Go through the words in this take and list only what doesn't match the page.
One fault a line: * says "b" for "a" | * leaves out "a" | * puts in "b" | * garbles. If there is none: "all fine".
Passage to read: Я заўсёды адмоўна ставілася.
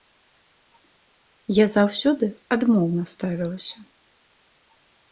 all fine